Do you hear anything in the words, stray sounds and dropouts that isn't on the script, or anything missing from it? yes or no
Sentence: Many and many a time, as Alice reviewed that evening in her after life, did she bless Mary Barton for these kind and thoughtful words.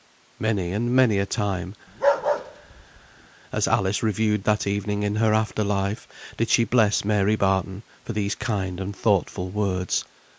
yes